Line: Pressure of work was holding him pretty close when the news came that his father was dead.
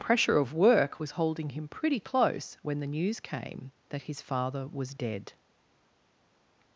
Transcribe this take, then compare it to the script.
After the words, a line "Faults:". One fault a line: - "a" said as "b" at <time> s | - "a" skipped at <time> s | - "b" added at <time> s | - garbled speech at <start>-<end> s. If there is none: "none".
Pressure of work was holding him pretty close when the news came that his father was dead.
Faults:
none